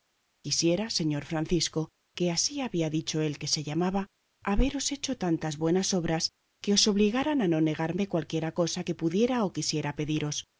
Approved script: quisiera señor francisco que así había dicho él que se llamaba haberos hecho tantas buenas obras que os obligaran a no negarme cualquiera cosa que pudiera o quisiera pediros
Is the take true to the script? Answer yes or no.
yes